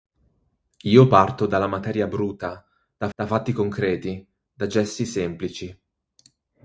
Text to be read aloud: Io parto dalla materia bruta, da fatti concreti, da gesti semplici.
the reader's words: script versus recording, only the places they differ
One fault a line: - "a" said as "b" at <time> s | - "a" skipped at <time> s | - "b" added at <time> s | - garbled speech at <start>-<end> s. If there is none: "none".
- "da" added at 3.1 s